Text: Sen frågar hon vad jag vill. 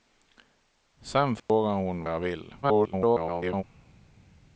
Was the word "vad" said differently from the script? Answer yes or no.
yes